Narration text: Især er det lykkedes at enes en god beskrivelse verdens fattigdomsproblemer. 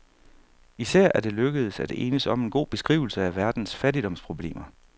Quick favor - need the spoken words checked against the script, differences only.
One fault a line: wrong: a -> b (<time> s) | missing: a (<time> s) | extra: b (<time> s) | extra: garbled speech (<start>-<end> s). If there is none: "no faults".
extra: om (2.3 s)
extra: af (3.2 s)